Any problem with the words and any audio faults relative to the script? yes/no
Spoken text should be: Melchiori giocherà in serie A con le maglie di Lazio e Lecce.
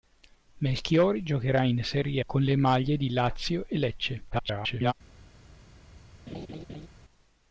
yes